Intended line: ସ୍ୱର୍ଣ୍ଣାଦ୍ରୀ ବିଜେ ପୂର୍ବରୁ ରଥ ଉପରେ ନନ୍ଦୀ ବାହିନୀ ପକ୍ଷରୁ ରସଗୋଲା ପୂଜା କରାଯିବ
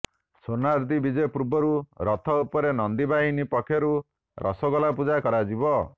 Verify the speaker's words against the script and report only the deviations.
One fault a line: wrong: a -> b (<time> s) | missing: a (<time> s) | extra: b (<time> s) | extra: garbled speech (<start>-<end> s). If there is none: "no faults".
no faults